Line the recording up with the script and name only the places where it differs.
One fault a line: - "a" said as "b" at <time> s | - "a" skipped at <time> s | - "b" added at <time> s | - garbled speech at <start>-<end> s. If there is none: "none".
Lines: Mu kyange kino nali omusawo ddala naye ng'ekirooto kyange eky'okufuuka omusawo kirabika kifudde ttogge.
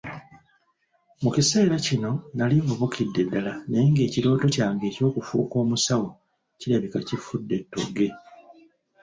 - "kyange" said as "kiseera" at 1.4 s
- "omusawo" said as "nvubukidde" at 2.6 s